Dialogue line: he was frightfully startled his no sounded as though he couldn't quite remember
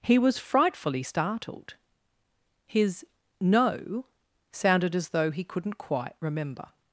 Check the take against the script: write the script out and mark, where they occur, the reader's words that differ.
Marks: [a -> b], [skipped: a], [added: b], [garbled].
he was frightfully startled his no sounded as though he couldn't quite remember